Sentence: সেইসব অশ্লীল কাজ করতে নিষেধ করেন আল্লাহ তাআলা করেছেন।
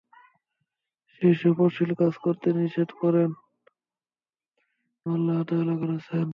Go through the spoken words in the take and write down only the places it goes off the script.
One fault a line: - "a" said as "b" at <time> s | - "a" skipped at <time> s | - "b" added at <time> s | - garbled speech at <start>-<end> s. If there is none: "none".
none